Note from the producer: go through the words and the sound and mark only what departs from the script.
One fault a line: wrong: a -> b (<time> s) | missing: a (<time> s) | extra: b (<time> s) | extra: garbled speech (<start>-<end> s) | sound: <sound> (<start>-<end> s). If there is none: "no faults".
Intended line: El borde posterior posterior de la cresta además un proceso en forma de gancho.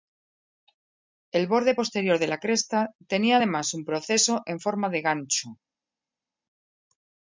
missing: posterior (2.2 s)
extra: tenía (3.1 s)